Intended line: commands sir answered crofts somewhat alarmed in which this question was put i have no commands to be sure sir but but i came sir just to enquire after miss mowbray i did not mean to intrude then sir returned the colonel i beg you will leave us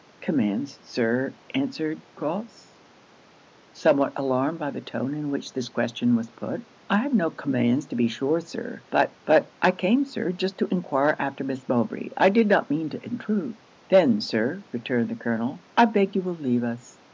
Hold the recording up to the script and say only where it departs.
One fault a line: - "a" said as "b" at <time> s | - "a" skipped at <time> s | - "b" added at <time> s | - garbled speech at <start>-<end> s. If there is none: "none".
- "by the tone" added at 4.6 s